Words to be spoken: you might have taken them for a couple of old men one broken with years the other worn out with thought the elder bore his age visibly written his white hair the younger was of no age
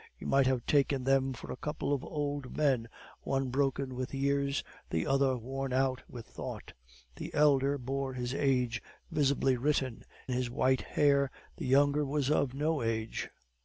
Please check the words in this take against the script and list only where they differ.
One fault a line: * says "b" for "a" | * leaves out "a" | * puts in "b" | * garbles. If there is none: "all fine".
all fine